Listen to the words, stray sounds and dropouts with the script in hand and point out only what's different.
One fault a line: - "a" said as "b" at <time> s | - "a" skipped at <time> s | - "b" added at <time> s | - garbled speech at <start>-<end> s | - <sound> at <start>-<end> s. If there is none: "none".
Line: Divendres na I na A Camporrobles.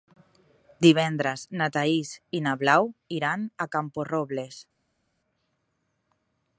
- "Thaís" added at 1.8 s
- "Blau iran" added at 2.6 s